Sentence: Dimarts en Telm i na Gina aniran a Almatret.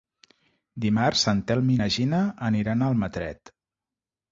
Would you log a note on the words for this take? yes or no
no